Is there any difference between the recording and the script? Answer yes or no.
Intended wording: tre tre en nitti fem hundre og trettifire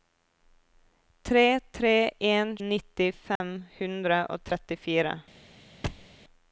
no